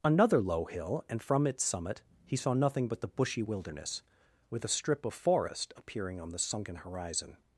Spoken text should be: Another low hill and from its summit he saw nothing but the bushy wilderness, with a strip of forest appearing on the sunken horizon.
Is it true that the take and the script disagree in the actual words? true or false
false